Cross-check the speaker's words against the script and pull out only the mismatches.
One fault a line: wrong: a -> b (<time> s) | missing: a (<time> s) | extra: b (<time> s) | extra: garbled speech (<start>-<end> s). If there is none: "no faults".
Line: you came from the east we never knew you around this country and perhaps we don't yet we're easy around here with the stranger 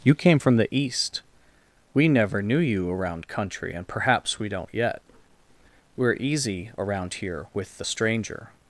missing: this (3.3 s)